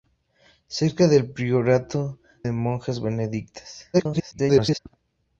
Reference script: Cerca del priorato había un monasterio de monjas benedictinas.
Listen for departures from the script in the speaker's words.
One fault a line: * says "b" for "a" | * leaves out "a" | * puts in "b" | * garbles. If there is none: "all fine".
* leaves out "había un monasterio"
* garbles